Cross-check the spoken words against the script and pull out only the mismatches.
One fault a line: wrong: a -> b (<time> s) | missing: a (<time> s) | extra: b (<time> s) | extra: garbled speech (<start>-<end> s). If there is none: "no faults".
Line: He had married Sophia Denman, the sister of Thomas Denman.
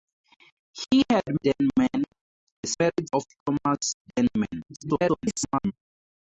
missing: married Sophia (1.2 s)
wrong: sister -> married (2.8 s)
extra: garbled speech (4.7-5.7 s)